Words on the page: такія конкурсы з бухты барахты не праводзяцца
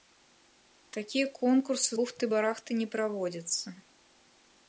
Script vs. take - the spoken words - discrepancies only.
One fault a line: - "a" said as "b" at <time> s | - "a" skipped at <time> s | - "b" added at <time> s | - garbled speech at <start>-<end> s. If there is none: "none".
- "з" skipped at 1.9 s